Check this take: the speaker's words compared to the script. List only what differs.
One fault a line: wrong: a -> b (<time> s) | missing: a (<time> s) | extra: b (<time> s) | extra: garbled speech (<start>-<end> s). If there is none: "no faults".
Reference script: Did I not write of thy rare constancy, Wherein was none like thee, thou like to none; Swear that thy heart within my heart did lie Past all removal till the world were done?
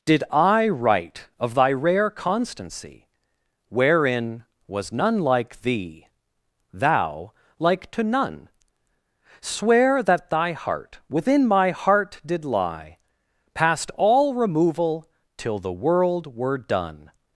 missing: not (0.7 s)